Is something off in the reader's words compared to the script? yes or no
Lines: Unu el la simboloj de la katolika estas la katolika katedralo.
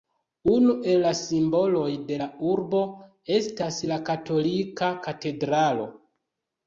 yes